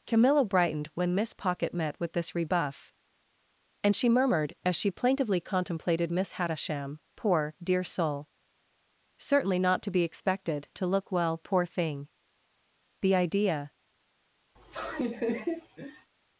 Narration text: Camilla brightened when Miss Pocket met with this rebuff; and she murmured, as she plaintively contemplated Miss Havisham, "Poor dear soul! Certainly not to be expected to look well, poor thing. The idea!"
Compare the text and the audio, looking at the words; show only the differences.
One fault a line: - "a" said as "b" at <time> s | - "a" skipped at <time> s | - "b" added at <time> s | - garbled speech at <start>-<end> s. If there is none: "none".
none